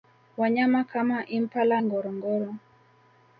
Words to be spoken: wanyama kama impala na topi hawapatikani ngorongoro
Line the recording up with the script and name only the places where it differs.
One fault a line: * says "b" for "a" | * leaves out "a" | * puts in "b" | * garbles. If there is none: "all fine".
* leaves out "na topi hawapatikani"